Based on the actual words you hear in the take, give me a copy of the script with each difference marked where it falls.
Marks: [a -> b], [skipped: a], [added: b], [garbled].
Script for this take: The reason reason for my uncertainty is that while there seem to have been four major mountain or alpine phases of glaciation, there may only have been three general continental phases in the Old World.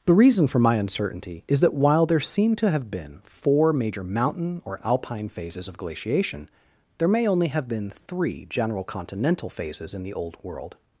The reason [skipped: reason] for my uncertainty is that while there seem to have been four major mountain or alpine phases of glaciation, there may only have been three general continental phases in the Old World.